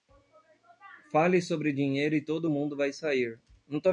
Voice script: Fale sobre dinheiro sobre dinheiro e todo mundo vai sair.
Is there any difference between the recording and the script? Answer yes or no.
yes